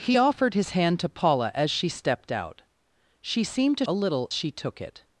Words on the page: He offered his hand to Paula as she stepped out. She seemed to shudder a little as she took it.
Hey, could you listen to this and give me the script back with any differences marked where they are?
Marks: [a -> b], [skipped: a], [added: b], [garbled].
He offered his hand to Paula as she stepped out. She seemed to [skipped: shudder] a little [skipped: as] she took it.